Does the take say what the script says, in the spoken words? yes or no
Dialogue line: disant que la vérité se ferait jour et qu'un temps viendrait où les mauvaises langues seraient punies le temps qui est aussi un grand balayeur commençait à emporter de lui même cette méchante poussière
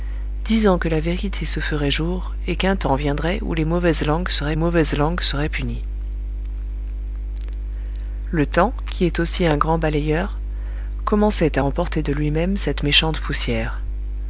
no